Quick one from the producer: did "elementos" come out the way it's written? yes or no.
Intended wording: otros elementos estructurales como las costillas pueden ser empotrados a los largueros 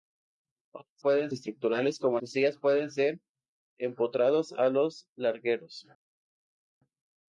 no